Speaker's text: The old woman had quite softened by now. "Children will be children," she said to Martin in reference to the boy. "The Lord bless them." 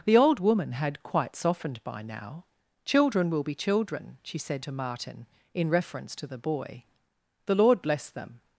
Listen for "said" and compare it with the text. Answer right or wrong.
right